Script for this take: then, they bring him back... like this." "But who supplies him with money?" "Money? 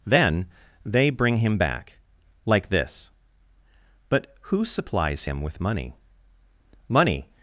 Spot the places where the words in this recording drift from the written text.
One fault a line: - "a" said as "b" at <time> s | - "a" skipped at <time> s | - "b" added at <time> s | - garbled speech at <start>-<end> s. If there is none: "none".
none